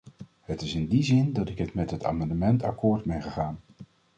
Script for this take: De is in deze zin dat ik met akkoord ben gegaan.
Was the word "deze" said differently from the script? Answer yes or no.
yes